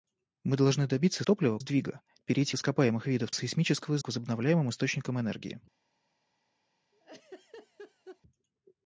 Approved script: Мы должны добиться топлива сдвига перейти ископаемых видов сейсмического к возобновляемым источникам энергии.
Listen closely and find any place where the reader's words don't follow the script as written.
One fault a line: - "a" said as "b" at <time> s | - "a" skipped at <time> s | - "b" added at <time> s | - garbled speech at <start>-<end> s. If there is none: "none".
none